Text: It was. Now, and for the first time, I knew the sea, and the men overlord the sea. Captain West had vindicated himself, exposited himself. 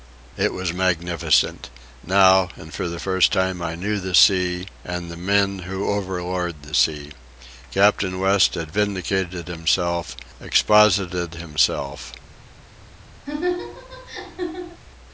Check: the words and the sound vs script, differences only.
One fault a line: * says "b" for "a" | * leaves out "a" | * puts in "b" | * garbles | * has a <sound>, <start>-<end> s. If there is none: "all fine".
* puts in "magnificent"
* puts in "who"
* has a laugh, 13.3-14.8 s